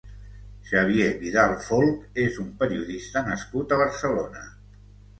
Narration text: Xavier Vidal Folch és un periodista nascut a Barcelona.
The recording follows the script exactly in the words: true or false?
true